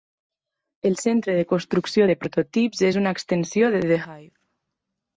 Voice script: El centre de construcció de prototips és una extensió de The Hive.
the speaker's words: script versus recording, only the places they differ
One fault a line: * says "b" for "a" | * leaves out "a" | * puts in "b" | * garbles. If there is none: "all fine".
all fine